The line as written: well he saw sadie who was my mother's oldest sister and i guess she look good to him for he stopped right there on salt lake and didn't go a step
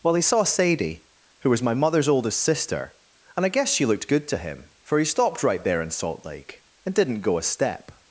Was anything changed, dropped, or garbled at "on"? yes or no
yes